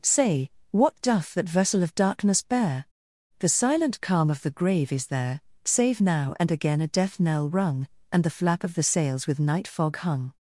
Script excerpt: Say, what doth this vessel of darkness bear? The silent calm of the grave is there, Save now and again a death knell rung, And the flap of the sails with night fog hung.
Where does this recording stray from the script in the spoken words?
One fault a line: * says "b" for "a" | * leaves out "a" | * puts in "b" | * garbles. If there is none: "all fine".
* says "that" for "this"